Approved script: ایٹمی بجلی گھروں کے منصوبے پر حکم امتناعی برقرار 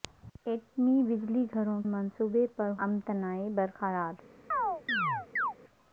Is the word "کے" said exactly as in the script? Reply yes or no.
no